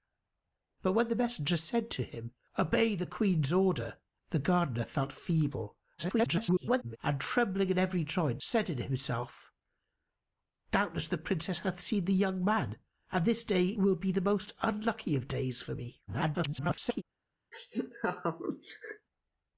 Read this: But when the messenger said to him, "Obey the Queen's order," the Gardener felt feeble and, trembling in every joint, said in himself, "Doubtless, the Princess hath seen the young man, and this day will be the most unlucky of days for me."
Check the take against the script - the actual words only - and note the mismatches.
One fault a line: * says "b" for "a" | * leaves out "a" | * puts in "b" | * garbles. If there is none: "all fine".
* garbles
* garbles